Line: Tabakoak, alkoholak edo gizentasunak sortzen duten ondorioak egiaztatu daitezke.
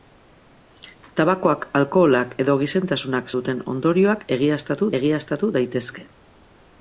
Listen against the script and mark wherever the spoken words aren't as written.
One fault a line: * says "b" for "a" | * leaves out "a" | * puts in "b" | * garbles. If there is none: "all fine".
* leaves out "sortzen"
* puts in "egiaztatu"